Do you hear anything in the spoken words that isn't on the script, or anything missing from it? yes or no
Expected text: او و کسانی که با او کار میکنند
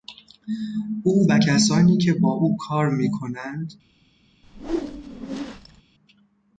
no